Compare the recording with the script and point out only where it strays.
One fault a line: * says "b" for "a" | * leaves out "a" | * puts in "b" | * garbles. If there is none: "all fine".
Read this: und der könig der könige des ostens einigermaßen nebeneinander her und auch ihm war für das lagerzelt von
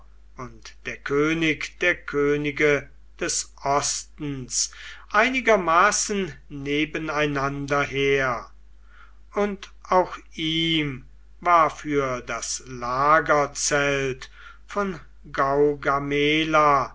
all fine